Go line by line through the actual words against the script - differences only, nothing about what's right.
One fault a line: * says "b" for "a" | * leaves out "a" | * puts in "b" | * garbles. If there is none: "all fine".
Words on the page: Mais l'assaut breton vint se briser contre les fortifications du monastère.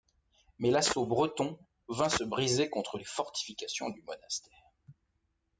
all fine